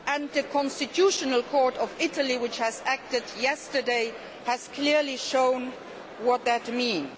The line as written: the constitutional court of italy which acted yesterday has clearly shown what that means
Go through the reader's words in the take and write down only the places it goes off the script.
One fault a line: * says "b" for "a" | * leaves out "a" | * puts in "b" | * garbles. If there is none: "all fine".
all fine